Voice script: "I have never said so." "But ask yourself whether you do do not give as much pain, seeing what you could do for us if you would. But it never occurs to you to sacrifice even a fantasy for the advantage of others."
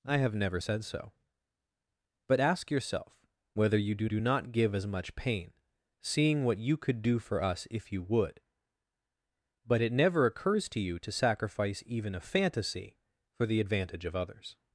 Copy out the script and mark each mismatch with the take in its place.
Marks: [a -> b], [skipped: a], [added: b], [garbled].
"I have never said so." "But ask yourself whether you do do not give as much pain, seeing what you could do for us if you would. But it never occurs to you to sacrifice even a fantasy for the advantage of others."